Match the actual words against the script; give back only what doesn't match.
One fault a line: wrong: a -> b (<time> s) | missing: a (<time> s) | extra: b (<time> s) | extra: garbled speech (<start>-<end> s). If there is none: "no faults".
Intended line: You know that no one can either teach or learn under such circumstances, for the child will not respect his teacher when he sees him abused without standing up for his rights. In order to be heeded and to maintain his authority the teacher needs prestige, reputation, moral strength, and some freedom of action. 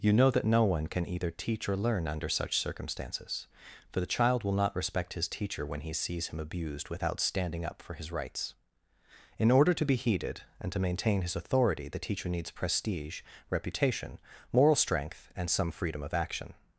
no faults